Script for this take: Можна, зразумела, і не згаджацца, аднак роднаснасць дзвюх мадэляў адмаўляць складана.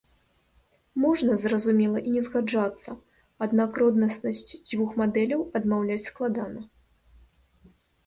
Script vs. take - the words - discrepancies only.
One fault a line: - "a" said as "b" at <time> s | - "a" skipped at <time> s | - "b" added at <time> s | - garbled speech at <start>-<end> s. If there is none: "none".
none